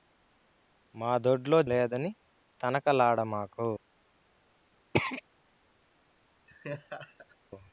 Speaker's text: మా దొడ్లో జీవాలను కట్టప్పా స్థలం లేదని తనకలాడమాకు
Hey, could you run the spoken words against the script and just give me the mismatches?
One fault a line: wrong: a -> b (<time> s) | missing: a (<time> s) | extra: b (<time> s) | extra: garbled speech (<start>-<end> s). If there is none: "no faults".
missing: జీవాలను కట్టప్పా స్థలం (1.6 s)